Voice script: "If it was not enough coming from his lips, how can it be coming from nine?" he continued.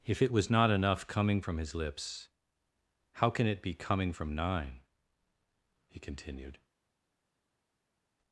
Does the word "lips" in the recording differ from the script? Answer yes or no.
no